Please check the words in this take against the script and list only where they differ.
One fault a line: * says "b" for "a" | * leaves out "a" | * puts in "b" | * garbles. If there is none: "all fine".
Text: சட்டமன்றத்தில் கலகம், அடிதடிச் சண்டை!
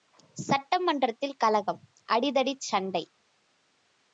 all fine